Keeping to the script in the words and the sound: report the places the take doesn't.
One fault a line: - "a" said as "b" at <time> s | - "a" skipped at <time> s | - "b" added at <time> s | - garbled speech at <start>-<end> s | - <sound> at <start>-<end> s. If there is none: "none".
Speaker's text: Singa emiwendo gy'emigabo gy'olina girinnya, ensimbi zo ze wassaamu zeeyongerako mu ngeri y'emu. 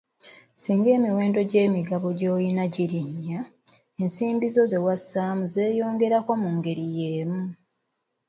none